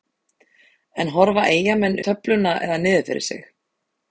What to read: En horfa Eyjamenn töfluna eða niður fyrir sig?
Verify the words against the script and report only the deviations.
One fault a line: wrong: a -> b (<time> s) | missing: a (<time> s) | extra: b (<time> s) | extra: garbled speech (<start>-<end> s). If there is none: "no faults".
no faults